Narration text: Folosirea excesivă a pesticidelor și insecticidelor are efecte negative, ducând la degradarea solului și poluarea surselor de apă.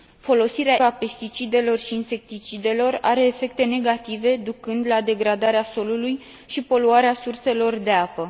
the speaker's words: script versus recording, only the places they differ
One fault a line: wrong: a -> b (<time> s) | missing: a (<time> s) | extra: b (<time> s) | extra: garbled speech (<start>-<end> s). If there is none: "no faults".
missing: excesivă (0.8 s)